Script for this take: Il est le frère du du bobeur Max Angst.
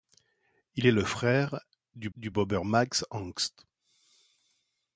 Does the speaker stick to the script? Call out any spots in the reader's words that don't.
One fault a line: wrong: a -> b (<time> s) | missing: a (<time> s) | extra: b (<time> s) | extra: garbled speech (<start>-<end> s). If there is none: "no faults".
no faults